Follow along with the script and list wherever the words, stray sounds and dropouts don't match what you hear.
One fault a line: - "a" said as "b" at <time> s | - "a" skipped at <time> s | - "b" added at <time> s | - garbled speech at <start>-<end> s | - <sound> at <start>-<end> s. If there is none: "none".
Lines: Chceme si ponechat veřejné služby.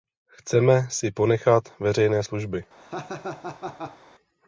- laugh at 2.8-4.0 s